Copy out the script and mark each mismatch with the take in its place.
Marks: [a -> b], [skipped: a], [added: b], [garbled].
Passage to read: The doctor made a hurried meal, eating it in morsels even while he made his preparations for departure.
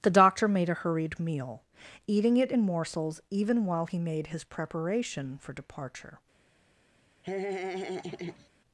The doctor made a hurried meal, eating it in morsels even while he made his [preparations -> preparation] for departure.